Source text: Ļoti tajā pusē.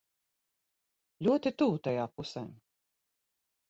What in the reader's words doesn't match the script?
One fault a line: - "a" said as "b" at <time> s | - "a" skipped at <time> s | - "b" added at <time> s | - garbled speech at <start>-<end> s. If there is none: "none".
- "tuvu" added at 1.6 s